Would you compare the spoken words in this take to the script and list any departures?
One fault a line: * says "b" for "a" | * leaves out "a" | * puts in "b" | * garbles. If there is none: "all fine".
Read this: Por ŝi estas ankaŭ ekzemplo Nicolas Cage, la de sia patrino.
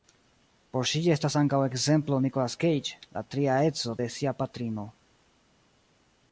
* puts in "tria edzo"